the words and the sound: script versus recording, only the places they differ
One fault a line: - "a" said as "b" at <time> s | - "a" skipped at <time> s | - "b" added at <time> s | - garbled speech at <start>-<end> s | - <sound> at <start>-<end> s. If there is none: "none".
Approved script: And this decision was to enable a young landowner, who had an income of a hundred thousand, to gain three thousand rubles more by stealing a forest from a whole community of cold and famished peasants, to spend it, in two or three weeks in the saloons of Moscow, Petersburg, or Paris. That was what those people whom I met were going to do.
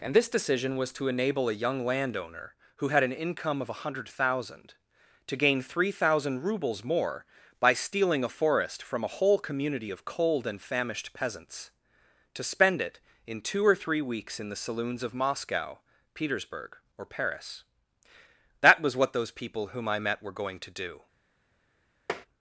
- tap at 22.1-22.3 s